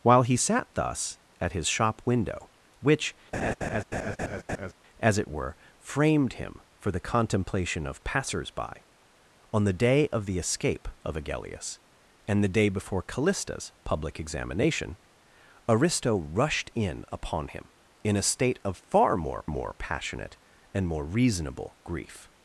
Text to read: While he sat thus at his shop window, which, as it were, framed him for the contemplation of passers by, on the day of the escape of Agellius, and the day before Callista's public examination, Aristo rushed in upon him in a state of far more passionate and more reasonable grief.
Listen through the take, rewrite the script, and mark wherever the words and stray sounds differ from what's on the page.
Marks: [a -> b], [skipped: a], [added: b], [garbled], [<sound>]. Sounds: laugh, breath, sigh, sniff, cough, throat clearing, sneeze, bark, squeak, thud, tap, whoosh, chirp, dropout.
While he sat thus at his shop window, which, [laugh] as it were, framed him for the contemplation of passers by, on the day of the escape of Agellius, and the day before Callista's public examination, Aristo rushed in upon him in a state of far more [added: more] passionate and more reasonable grief.